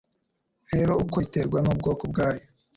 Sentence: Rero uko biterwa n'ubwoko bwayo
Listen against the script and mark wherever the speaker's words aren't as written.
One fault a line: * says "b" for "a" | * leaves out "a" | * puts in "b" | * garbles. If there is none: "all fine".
all fine